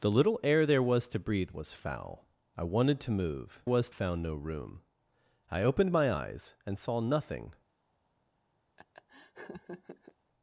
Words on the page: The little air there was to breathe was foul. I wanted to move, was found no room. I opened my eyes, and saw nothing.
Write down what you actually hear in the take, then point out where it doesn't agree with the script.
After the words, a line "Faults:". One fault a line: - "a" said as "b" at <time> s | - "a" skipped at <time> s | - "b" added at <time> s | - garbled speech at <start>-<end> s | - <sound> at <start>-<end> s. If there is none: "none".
The little air there was to breathe was foul. I wanted to move, was found no room. I opened my eyes, and saw nothing.
Faults:
- laugh at 8.8-10.1 s